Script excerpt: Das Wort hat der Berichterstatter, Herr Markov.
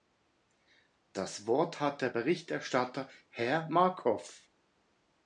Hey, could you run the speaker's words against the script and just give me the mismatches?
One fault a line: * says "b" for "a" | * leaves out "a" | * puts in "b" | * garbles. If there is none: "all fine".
all fine